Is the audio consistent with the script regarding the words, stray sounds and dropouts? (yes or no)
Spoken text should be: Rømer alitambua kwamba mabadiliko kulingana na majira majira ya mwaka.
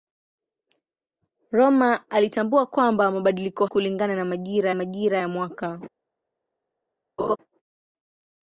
no